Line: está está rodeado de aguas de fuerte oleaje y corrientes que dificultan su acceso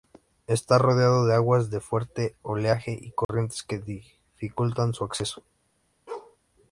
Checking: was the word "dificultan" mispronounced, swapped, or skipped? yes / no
no